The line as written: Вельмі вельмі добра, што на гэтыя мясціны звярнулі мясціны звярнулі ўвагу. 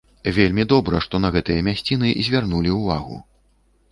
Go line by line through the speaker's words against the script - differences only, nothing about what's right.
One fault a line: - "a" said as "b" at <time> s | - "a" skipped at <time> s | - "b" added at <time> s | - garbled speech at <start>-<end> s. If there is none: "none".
- "вельмі" skipped at 0.6 s
- "мясціны звярнулі" skipped at 2.8 s